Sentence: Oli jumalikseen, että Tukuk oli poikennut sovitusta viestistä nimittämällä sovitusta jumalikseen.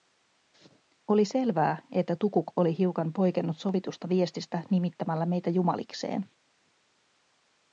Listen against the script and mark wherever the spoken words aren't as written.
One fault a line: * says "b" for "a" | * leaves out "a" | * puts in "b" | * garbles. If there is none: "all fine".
* says "selvää" for "jumalikseen"
* puts in "hiukan"
* says "meitä" for "sovitusta"